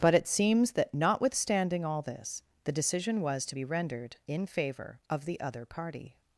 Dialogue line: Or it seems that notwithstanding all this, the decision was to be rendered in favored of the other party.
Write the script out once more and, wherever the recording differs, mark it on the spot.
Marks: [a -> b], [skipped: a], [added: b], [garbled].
[Or -> But] it seems that notwithstanding all this, the decision was to be rendered in [favored -> favor] of the other party.